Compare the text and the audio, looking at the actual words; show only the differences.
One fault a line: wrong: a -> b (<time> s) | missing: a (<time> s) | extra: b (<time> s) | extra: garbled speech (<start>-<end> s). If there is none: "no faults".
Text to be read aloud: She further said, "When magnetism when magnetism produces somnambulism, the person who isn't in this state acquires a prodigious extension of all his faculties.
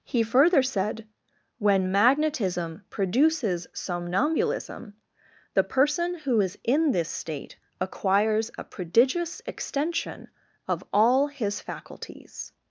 wrong: She -> He (0.0 s)
missing: when magnetism (2.8 s)
wrong: isn't -> is (6.4 s)